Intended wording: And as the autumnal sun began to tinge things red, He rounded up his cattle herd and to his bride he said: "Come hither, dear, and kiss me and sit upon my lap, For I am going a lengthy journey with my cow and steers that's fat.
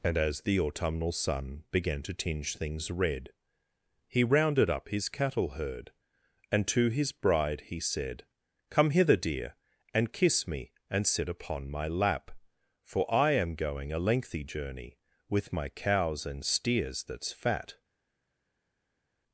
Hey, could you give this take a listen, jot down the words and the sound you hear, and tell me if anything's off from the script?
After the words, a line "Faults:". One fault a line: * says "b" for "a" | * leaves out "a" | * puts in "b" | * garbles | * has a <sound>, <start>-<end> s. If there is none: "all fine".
And as the autumnal sun began to tinge things red, He rounded up his cattle herd and to his bride he said: "Come hither, dear, and kiss me and sit upon my lap, For I am going a lengthy journey with my cows and steers that's fat.
Faults:
* says "cows" for "cow"